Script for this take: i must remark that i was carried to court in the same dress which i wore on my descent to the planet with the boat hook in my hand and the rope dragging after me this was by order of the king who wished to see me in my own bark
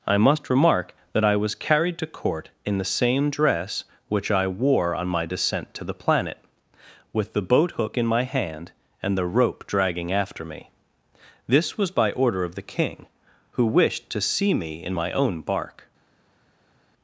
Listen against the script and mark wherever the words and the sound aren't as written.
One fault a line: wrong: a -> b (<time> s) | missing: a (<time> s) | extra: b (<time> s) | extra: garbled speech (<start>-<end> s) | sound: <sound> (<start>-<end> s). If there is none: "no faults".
no faults